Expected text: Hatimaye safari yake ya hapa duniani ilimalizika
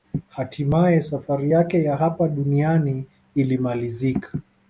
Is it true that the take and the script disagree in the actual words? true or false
false